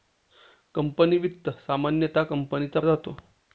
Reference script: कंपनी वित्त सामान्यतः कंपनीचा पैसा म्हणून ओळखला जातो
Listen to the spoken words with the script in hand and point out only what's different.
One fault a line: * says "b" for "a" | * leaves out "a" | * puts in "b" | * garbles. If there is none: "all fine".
* leaves out "पैसा म्हणून ओळखला"